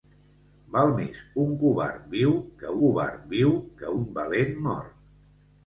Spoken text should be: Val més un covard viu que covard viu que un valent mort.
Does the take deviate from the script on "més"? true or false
false